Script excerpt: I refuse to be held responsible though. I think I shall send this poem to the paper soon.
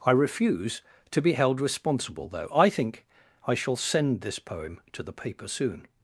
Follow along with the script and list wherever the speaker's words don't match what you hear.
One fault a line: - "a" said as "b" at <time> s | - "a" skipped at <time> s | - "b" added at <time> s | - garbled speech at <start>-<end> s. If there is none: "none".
none